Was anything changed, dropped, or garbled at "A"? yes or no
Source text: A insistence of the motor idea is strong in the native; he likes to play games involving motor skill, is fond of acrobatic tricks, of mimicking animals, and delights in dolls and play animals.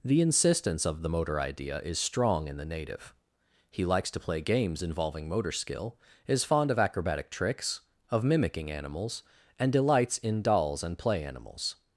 yes